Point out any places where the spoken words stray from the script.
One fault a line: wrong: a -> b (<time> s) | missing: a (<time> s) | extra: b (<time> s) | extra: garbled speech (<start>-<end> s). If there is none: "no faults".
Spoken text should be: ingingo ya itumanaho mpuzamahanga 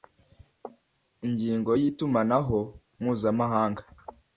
no faults